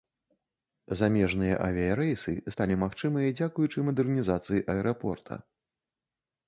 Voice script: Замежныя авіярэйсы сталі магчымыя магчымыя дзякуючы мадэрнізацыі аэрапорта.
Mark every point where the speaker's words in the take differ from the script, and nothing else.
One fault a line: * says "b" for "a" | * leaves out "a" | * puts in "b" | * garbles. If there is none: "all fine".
* leaves out "магчымыя"